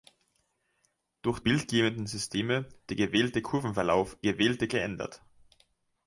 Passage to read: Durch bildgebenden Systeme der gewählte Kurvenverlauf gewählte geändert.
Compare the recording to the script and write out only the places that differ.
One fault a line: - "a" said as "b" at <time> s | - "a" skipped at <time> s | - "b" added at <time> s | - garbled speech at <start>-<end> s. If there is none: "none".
none